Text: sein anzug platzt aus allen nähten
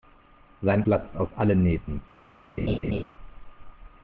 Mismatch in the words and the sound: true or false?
true